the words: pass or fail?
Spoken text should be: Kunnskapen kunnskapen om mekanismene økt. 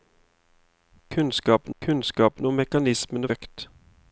pass